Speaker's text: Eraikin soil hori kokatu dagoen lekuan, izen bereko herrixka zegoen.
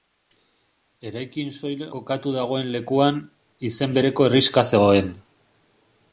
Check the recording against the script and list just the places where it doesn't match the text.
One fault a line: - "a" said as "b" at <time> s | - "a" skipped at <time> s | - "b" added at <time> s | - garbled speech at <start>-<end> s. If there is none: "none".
- "hori" skipped at 1.8 s